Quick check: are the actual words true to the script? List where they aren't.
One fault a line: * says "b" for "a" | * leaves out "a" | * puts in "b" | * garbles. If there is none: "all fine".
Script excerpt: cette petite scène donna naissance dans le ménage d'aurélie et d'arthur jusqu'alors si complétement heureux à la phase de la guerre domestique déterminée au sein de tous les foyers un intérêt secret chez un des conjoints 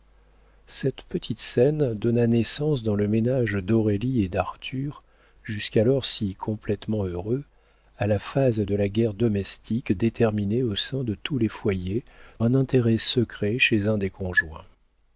all fine